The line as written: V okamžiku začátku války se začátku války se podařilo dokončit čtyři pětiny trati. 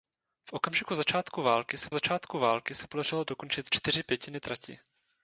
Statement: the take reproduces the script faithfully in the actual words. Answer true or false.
true